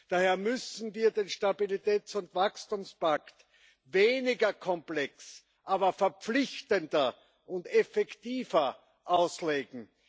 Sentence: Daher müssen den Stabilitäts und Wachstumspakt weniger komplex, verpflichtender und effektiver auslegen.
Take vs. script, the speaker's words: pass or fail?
fail